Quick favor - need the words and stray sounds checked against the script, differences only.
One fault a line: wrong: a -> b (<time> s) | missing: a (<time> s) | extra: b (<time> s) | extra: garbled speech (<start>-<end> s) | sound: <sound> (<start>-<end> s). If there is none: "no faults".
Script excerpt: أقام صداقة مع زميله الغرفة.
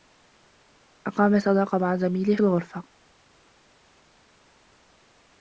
no faults